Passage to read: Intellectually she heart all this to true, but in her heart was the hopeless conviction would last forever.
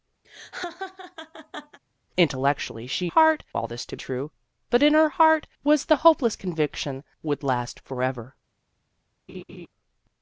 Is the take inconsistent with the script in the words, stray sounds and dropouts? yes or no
yes